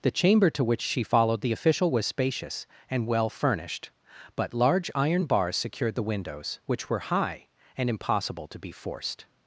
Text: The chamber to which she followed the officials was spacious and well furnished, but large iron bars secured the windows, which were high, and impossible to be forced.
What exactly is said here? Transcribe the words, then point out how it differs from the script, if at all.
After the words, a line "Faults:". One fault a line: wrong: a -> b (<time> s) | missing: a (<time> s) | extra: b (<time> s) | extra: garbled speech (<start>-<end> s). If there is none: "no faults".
The chamber to which she followed the official was spacious and well furnished, but large iron bars secured the windows, which were high, and impossible to be forced.
Faults:
wrong: officials -> official (1.5 s)